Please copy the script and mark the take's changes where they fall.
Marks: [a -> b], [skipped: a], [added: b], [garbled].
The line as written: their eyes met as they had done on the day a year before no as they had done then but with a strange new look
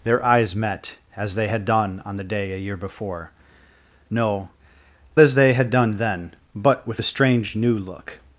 their eyes met as they had done on the day a year before no as they had done then but with a strange new look